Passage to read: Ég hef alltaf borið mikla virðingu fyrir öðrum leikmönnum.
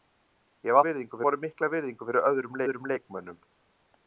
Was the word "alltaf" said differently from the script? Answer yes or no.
yes